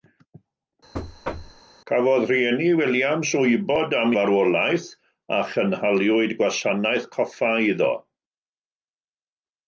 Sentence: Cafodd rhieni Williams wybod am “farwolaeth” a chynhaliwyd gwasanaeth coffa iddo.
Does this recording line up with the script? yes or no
yes